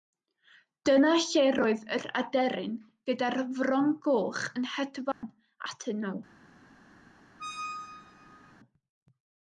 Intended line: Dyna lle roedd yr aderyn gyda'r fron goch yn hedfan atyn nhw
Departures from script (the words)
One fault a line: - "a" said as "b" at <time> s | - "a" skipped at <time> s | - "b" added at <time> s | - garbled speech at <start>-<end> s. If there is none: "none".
none